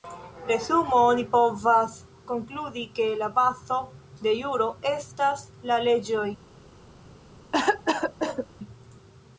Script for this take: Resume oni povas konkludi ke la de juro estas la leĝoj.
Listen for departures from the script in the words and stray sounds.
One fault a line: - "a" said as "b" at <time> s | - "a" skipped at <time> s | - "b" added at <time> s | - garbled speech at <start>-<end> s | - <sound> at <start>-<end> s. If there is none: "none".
- "bazo" added at 3.4 s
- cough at 7.5-8.5 s